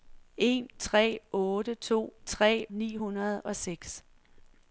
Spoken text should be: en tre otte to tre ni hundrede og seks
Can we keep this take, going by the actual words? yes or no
yes